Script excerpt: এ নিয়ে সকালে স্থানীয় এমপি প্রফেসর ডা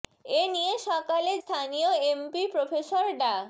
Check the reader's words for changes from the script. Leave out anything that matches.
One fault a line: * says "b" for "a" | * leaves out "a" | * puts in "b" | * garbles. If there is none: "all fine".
all fine